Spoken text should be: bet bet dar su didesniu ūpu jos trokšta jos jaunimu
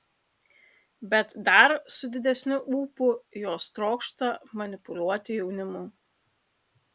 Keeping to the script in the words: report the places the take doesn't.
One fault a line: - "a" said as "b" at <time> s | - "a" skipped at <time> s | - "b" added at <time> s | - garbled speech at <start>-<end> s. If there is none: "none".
- "bet" skipped at 1.4 s
- "jos" said as "manipuliuoti" at 4.6 s